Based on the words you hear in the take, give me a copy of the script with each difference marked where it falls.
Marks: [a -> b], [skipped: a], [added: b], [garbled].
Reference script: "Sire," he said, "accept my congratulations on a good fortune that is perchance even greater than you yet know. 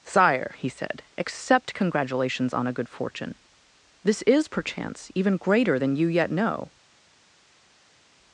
"Sire," he said, "accept [skipped: my] congratulations on a good fortune [that -> this] is perchance even greater than you yet know.